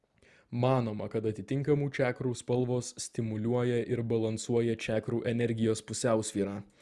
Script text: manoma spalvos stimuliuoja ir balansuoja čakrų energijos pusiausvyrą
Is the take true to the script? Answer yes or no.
no